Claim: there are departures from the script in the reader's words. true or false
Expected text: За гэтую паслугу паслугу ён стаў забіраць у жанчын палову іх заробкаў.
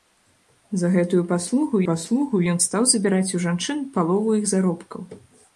false